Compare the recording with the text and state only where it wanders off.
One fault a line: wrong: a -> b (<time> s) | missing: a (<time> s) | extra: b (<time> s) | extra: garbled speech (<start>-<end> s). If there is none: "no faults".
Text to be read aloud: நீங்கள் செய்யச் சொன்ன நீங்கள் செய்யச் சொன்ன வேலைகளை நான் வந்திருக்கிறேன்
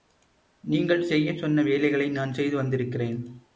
missing: நீங்கள் செய்யச் சொன்ன (1.6 s)
extra: செய்து (2.3 s)